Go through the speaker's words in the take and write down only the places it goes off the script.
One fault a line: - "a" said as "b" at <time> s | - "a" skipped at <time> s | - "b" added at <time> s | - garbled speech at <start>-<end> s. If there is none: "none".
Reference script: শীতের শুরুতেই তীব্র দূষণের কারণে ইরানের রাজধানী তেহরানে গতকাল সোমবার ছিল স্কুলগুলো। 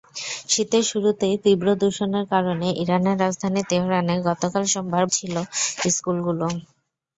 none